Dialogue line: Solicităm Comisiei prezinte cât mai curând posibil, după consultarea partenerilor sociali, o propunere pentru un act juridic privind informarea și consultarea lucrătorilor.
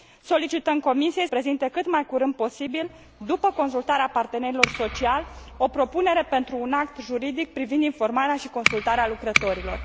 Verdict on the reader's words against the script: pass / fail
pass